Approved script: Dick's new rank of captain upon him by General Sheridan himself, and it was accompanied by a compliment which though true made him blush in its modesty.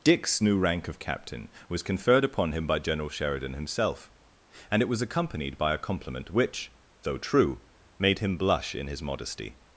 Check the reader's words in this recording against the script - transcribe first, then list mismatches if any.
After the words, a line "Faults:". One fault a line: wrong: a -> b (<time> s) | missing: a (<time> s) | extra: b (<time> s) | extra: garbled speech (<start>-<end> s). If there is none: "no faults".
Dick's new rank of captain was conferred upon him by General Sheridan himself, and it was accompanied by a compliment which though true made him blush in his modesty.
Faults:
extra: was conferred (1.7 s)
wrong: its -> his (8.9 s)